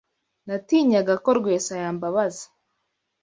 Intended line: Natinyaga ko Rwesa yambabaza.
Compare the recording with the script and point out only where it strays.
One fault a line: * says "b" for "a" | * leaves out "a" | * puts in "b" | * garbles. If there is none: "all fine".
all fine